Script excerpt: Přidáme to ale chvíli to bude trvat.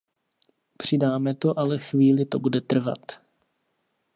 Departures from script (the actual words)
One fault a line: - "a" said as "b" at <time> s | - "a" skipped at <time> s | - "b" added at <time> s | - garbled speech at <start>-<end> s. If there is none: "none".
none